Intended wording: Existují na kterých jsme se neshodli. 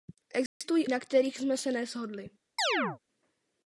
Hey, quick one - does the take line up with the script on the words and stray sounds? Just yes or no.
no